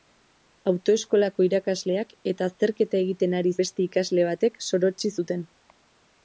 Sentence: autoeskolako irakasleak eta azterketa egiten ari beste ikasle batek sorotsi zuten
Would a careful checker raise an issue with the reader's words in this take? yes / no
no